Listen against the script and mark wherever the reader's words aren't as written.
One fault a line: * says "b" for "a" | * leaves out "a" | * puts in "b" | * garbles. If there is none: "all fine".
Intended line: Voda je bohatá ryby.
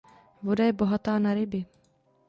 * puts in "na"